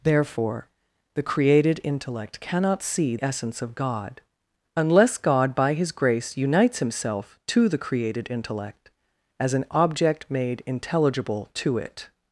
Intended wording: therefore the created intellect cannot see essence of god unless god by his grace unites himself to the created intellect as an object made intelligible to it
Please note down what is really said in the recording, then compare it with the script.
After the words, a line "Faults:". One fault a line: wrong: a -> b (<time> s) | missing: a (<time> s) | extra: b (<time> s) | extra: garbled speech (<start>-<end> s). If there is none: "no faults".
therefore the created intellect cannot see essence of god unless god by his grace unites himself to the created intellect as an object made intelligible to it
Faults:
no faults